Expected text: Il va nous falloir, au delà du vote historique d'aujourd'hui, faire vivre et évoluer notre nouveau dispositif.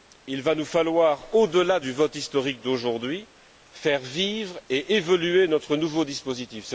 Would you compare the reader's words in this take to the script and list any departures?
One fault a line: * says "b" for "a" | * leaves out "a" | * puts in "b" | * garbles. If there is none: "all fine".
all fine